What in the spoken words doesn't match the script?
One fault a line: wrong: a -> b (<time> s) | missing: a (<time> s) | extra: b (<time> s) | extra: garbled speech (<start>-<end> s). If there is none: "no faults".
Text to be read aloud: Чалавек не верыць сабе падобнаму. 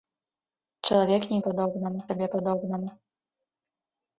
wrong: верыць -> падобнаму (1.5 s)